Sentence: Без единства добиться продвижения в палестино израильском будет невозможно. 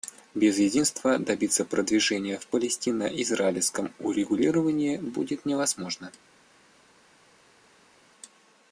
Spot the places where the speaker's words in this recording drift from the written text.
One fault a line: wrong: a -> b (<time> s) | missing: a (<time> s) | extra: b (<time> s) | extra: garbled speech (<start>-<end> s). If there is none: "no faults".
extra: урегулировании (4.0 s)